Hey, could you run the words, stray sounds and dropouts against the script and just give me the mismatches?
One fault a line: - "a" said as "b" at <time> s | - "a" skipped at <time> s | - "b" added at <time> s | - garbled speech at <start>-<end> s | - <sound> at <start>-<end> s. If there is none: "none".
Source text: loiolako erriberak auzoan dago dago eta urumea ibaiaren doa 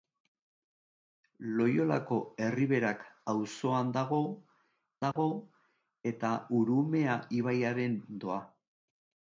- dropout at 5.1-5.2 s